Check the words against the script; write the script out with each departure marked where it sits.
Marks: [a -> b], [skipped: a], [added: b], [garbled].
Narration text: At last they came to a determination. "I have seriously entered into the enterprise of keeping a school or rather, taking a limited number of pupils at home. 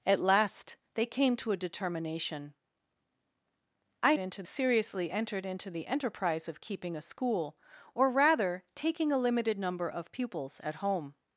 At last they came to a determination. "I [have -> into] seriously entered into the enterprise of keeping a school or rather, taking a limited number of pupils at home.